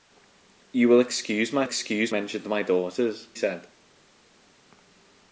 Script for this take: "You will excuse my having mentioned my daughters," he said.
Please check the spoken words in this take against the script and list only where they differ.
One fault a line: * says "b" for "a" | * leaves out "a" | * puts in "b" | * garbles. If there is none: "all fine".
* says "excuse" for "having"
* leaves out "he"